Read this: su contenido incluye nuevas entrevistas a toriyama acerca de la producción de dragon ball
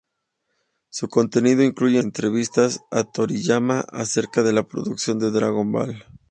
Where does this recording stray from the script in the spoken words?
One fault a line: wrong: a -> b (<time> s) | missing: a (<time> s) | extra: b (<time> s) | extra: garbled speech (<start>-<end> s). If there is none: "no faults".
missing: nuevas (2.0 s)